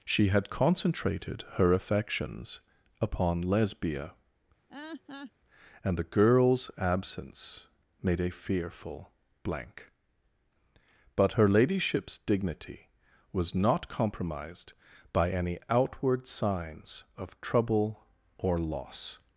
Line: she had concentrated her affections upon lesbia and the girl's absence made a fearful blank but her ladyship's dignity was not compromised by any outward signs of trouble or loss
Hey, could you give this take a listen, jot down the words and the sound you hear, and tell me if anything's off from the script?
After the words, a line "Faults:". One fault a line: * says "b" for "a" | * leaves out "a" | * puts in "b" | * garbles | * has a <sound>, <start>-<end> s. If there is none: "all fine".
she had concentrated her affections upon lesbia and the girl's absence made a fearful blank but her ladyship's dignity was not compromised by any outward signs of trouble or loss
Faults:
* has a laugh, 4.7-5.3 s